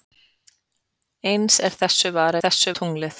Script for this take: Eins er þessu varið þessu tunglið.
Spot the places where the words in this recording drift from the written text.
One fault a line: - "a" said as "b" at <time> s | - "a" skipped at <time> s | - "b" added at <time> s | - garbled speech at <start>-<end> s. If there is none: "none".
none